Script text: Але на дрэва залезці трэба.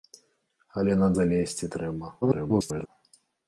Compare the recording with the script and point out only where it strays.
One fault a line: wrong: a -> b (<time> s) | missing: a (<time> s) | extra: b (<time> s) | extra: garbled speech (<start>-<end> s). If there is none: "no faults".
missing: дрэва (1.1 s)
extra: garbled speech (2.2-2.9 s)